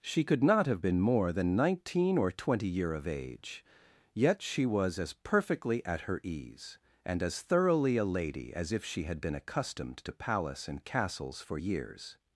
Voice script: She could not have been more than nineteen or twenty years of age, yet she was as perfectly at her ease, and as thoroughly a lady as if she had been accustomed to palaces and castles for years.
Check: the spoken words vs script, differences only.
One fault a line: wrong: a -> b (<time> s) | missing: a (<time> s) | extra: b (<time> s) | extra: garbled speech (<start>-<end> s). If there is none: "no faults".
wrong: years -> year (2.7 s)
wrong: palaces -> palace (10.1 s)